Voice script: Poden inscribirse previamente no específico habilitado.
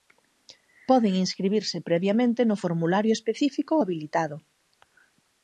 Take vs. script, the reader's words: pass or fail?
fail